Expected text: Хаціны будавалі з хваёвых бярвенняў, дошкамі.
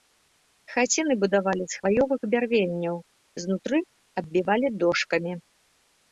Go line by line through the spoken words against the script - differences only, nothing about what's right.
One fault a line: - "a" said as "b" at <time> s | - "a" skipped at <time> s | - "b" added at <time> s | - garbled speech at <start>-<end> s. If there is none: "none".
- "знутры аббівалі" added at 3.4 s